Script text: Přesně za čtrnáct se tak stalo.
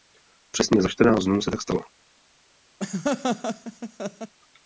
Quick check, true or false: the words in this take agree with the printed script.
false